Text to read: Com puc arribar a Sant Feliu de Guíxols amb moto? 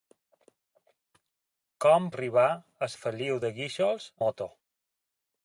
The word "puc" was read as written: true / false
false